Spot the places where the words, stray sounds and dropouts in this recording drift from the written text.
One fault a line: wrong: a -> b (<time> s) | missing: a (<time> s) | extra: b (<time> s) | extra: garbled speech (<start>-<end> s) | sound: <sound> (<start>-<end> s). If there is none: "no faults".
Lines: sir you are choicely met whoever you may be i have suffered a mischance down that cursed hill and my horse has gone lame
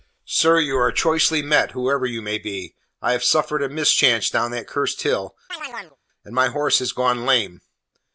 sound: chirp (5.5-6.0 s)